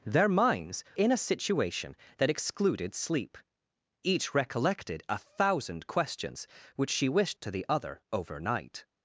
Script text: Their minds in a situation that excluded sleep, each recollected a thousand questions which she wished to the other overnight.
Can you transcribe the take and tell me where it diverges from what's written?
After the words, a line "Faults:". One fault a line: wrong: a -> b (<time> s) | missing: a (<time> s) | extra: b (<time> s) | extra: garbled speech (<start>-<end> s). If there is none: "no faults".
Their minds in a situation that excluded sleep, each recollected a thousand questions which she wished to the other overnight.
Faults:
no faults